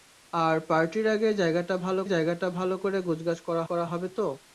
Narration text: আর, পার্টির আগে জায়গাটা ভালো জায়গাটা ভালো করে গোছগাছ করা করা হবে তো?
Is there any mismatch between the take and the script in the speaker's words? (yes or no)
no